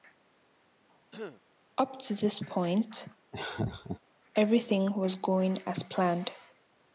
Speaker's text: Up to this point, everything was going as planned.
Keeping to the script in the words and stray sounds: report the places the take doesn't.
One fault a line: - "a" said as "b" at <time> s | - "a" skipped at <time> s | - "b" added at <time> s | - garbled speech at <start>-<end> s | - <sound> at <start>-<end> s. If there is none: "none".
- throat clearing at 1.1-1.4 s
- laugh at 3.3-4.0 s